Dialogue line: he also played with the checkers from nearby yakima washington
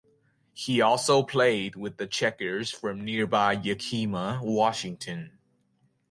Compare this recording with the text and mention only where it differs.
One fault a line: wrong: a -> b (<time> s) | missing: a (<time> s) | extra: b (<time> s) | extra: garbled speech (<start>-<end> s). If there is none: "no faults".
no faults